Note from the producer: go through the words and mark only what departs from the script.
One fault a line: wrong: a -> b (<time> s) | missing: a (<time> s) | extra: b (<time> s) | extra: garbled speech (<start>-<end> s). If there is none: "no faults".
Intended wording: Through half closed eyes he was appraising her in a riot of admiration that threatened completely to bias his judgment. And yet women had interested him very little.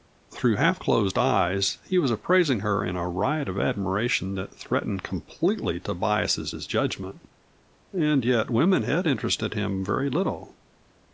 extra: his (6.5 s)